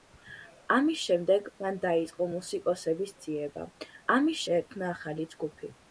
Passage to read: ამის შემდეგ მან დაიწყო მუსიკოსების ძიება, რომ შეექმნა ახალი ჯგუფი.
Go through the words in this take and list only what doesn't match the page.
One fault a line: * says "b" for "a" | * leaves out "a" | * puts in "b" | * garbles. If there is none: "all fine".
* says "ამის" for "რომ"